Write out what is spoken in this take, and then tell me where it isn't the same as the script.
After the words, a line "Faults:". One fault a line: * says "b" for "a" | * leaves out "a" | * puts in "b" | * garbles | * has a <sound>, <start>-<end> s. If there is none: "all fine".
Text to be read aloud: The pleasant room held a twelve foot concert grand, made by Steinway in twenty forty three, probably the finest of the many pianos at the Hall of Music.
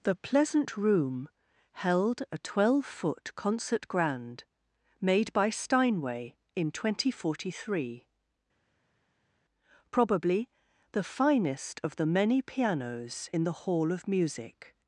The pleasant room held a twelve foot concert grand, made by Steinway in twenty forty three, probably the finest of the many pianos in the Hall of Music.
Faults:
* says "in" for "at"